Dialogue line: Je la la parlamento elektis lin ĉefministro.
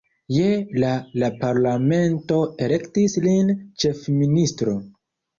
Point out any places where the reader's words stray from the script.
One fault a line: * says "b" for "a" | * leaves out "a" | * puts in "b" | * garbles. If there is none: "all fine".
all fine